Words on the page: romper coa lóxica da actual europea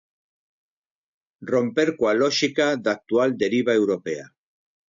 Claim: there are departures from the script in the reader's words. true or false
true